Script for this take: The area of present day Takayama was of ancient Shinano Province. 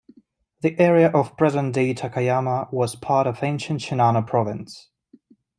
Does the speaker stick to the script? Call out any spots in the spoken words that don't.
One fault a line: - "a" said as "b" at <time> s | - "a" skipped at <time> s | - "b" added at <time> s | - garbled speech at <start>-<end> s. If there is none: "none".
- "part" added at 3.0 s